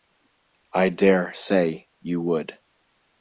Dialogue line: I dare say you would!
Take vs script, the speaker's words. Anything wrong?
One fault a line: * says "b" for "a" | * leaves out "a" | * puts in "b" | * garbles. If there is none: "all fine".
all fine